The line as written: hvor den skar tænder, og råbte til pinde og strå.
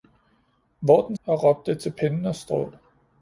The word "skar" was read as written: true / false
false